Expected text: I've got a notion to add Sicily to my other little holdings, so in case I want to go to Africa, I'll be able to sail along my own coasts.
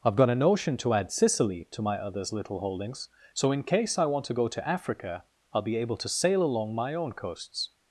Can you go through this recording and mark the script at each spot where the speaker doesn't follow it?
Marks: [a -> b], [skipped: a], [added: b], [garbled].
I've got a notion to add Sicily to my [other -> others] little holdings, so in case I want to go to Africa, I'll be able to sail along my own coasts.